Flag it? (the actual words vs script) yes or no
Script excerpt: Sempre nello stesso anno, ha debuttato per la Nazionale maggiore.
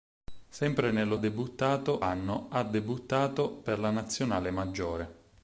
yes